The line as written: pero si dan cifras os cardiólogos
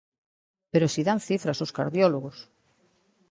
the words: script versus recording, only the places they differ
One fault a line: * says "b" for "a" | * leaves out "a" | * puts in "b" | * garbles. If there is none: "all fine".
all fine